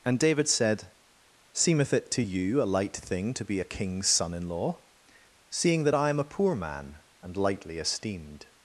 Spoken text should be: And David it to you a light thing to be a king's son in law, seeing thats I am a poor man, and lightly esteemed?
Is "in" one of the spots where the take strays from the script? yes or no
no